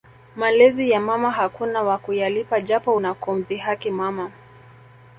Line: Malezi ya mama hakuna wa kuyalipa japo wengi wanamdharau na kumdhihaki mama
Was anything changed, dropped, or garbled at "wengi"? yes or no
yes